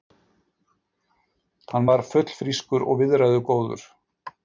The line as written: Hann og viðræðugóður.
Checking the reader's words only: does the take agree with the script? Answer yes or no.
no